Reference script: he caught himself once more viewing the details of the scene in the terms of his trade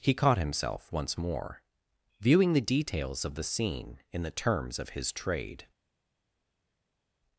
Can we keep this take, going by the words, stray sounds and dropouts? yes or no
yes